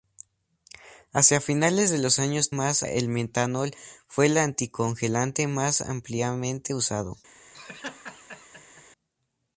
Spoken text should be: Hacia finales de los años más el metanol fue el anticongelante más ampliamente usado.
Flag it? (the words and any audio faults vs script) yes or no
yes